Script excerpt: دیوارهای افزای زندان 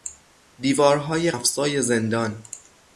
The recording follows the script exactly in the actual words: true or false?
true